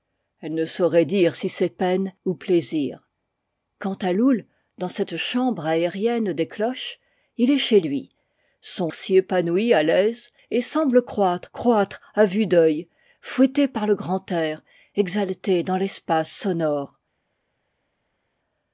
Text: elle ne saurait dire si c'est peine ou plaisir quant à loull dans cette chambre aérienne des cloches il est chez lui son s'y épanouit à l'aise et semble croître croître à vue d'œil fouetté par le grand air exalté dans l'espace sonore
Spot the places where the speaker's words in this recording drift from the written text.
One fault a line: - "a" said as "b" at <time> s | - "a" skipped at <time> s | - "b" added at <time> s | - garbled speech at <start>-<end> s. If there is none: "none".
none